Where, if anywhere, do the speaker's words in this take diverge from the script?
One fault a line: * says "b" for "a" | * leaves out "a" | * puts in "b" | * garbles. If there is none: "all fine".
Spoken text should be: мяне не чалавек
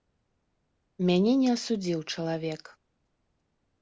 * puts in "асудзіў"